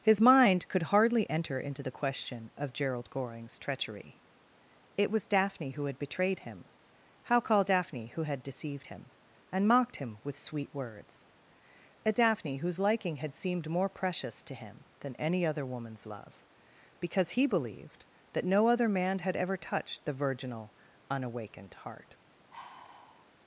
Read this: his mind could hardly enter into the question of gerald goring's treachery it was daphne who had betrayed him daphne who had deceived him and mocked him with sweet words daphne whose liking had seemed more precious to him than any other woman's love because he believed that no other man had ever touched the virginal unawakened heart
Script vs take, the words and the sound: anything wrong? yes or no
yes